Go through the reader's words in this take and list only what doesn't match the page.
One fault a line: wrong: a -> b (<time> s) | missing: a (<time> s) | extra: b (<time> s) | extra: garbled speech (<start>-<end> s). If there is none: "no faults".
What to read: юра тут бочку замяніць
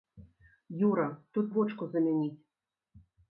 no faults